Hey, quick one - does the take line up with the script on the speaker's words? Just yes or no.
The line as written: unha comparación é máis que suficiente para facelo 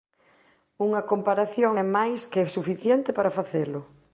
yes